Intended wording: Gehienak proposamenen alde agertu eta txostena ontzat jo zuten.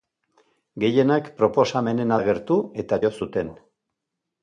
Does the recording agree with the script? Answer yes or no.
no